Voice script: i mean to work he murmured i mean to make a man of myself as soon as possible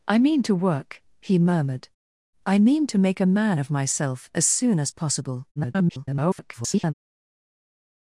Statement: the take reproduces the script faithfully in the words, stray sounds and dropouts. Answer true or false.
false